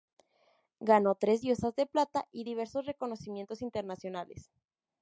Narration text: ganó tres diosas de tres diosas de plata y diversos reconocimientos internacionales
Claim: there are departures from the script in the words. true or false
true